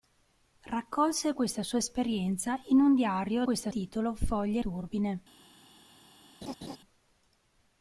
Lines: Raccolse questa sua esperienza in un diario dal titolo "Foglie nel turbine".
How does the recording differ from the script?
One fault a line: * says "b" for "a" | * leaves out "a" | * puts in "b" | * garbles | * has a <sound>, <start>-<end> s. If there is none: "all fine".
* says "questa" for "dal"
* leaves out "nel"
* has a laugh, 6.4-6.8 s